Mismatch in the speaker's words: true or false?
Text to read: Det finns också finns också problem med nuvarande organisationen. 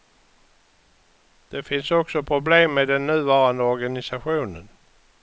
true